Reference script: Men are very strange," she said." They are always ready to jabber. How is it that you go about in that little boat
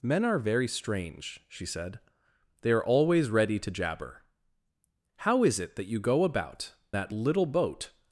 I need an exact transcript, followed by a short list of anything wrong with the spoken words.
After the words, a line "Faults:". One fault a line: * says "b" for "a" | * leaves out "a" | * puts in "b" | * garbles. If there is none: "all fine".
Men are very strange," she said." They are always ready to jabber. How is it that you go about that little boat
Faults:
* leaves out "in"